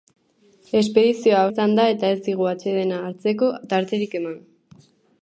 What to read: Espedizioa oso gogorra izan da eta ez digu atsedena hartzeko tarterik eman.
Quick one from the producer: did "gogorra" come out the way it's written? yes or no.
no